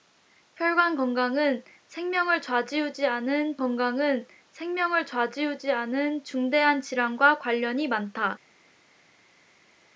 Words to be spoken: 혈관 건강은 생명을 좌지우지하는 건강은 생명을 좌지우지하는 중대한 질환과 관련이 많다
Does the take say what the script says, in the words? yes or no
yes